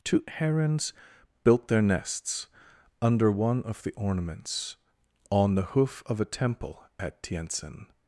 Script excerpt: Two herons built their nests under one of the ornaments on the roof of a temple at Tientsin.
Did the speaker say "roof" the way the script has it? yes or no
no